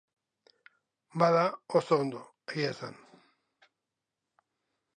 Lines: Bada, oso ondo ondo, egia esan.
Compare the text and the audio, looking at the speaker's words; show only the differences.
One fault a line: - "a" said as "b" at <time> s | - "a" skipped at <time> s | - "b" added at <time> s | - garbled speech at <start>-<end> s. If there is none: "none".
- "ondo" skipped at 2.2 s